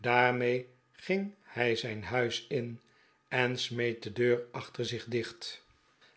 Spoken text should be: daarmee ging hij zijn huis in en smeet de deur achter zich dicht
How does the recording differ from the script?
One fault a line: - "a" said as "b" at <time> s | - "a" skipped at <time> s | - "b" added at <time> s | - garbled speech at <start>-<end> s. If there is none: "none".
none